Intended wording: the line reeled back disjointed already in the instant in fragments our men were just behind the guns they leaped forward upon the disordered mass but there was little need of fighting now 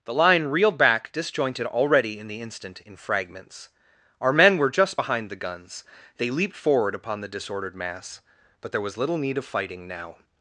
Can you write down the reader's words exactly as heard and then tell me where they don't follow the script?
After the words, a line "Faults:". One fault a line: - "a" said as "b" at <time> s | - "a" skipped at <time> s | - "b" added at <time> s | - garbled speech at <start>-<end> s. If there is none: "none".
the line reeled back disjointed already in the instant in fragments our men were just behind the guns they leaped forward upon the disordered mass but there was little need of fighting now
Faults:
none